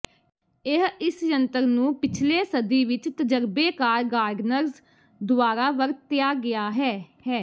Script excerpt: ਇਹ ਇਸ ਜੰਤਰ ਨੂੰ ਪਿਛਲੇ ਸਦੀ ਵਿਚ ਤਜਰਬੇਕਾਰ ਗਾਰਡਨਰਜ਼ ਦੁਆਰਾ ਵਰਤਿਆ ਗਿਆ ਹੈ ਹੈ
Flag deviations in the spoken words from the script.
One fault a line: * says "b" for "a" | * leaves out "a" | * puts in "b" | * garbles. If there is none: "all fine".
all fine